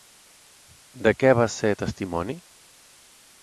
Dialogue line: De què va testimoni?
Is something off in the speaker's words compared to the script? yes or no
yes